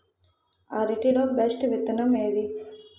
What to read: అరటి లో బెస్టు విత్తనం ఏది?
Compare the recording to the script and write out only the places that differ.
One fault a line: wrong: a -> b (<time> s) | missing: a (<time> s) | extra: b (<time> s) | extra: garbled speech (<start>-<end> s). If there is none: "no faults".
no faults